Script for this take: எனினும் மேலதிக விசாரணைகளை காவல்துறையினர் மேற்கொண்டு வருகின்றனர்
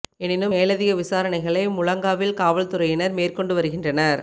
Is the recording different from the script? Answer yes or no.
yes